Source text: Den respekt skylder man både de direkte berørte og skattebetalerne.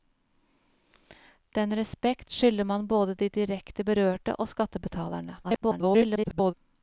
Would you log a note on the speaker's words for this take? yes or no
yes